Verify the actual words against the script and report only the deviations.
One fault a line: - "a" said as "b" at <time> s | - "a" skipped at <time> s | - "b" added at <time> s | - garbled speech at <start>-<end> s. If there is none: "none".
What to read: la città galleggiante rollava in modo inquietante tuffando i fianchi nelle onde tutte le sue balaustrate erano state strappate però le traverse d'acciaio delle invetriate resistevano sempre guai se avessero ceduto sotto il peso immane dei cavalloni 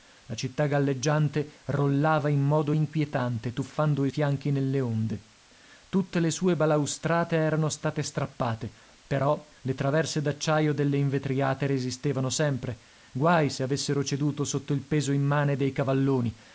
none